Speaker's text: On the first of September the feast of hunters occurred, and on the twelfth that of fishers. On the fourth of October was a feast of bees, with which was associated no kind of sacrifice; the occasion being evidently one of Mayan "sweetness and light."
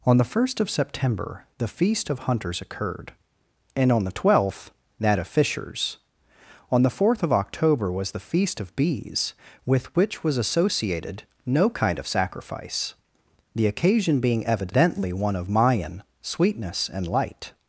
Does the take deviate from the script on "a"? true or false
true